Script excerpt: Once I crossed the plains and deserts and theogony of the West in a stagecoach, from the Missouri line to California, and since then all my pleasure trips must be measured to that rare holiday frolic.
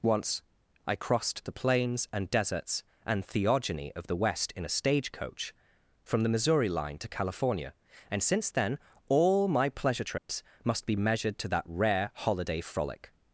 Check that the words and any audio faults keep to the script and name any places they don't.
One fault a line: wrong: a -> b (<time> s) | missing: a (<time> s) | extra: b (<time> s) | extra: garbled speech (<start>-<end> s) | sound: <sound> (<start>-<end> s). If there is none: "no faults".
sound: dropout (10.2-10.3 s)